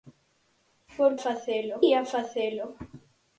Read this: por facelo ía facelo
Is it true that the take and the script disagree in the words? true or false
false